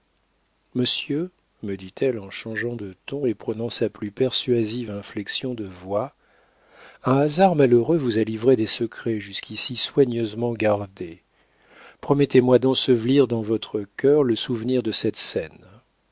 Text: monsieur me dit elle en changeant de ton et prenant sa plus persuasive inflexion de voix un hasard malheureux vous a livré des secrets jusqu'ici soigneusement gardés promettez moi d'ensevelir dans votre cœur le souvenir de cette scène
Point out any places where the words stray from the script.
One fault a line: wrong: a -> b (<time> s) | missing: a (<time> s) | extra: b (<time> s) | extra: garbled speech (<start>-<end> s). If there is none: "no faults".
no faults